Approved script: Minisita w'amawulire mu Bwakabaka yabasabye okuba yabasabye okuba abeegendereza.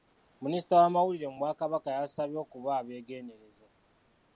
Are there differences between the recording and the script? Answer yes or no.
yes